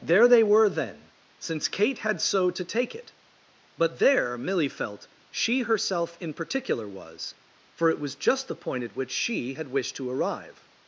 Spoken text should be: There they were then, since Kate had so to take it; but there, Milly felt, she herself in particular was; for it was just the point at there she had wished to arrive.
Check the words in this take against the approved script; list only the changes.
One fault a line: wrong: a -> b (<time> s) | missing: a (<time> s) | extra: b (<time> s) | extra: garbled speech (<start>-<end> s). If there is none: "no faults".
wrong: there -> which (8.9 s)